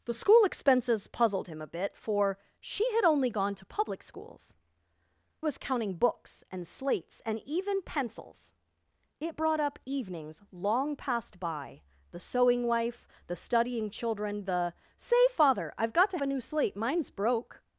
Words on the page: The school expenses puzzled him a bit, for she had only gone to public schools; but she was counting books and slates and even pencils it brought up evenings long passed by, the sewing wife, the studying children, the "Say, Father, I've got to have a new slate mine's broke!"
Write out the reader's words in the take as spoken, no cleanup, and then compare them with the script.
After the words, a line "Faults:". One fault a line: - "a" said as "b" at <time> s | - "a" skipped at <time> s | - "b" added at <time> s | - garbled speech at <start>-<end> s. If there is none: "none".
The school expenses puzzled him a bit, for she had only gone to public schools; was counting books and slates and even pencils it brought up evenings long passed by, the sewing wife, the studying children, the "Say, Father, I've got to a new slate mine's broke!"
Faults:
- "but she" skipped at 4.5 s
- "have" skipped at 16.2 s